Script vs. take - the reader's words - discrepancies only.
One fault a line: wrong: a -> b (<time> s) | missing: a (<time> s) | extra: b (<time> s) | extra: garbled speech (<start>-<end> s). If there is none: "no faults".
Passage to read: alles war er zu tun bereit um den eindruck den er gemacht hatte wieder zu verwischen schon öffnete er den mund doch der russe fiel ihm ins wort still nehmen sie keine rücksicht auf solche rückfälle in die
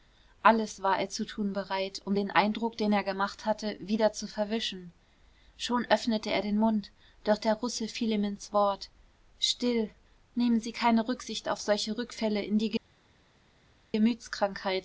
no faults